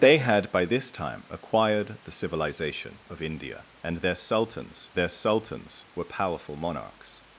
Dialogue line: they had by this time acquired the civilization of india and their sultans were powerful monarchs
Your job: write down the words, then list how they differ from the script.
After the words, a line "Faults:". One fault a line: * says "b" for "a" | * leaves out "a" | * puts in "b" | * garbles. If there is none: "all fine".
they had by this time acquired the civilization of india and their sultans their sultans were powerful monarchs
Faults:
* puts in "their sultans"